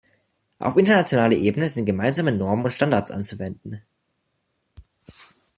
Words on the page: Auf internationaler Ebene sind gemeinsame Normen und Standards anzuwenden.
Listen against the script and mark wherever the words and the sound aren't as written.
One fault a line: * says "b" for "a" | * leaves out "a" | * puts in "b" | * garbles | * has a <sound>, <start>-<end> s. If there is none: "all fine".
all fine